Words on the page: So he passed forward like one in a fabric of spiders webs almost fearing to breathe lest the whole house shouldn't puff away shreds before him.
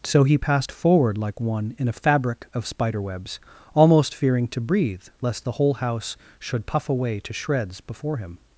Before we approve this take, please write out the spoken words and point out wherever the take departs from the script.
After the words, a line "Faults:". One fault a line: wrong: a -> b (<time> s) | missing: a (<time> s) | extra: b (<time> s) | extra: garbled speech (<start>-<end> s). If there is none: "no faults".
So he passed forward like one in a fabric of spider webs almost fearing to breathe lest the whole house should puff away to shreds before him.
Faults:
wrong: spiders -> spider (2.6 s)
wrong: shouldn't -> should (6.4 s)
extra: to (7.2 s)